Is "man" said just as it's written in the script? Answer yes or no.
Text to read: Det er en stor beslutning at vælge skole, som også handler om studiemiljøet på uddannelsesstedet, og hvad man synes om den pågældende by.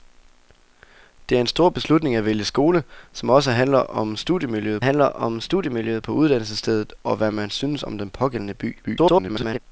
yes